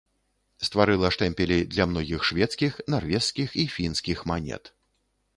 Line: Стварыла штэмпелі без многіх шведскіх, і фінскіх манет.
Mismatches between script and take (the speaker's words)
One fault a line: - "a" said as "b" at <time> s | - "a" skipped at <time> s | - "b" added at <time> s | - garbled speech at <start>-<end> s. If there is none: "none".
- "без" said as "для" at 1.7 s
- "нарвежскіх" added at 2.9 s